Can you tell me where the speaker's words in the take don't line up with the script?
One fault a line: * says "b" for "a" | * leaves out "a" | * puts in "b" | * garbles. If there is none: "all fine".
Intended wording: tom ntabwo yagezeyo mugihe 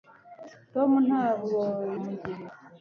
* leaves out "yagezeyo"